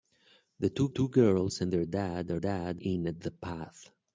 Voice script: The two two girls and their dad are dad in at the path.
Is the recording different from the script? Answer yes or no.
no